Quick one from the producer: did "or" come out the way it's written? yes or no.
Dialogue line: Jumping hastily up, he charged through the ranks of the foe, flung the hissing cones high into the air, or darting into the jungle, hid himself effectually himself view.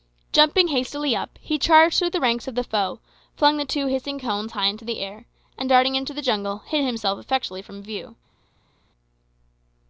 no